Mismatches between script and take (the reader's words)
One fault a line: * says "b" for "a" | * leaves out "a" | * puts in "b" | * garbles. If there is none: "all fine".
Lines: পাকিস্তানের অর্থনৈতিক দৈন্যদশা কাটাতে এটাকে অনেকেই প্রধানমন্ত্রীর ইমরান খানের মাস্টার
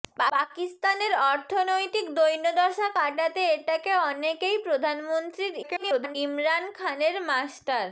* garbles